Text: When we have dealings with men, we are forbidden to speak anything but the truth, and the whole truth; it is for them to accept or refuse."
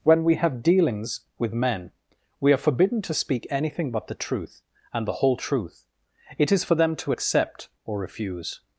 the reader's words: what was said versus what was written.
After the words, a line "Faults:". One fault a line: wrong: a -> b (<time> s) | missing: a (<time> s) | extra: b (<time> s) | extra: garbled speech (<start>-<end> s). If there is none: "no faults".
When we have dealings with men, we are forbidden to speak anything but the truth, and the whole truth; it is for them to accept or refuse."
Faults:
no faults